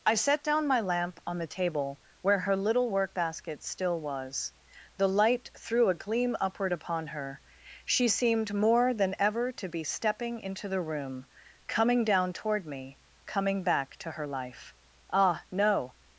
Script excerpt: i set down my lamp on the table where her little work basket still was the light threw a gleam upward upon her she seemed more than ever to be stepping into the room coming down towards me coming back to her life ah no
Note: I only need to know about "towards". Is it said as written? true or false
false